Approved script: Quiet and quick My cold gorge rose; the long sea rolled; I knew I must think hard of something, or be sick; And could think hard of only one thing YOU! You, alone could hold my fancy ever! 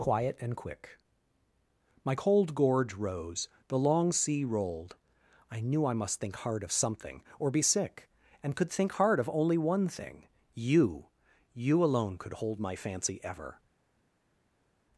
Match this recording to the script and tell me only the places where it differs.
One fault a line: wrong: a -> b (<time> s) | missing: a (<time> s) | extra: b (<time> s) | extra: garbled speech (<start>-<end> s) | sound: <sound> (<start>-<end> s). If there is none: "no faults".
no faults